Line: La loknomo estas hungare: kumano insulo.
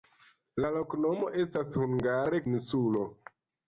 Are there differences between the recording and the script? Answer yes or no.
yes